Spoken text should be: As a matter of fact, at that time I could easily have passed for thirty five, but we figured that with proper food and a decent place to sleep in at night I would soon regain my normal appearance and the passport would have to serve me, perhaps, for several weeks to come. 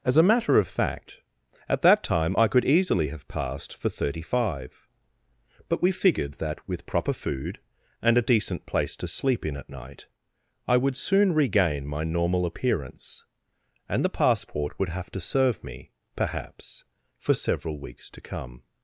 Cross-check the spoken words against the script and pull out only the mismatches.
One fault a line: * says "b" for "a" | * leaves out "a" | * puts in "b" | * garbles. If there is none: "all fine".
all fine